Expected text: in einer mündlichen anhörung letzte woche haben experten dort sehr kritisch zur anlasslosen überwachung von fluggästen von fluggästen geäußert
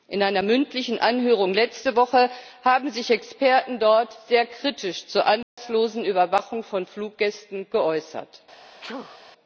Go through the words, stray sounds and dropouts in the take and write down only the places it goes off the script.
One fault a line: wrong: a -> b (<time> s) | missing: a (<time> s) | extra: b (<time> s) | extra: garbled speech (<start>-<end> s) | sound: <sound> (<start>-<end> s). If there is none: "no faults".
extra: sich (2.9 s)
sound: dropout (5.4-5.6 s)
missing: von fluggästen (7.7 s)
sound: sneeze (8.8-9.2 s)